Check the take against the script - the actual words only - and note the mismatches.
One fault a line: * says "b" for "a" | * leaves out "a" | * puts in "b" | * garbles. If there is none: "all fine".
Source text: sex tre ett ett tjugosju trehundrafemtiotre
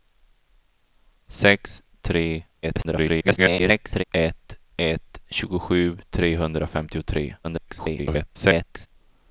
* garbles
* garbles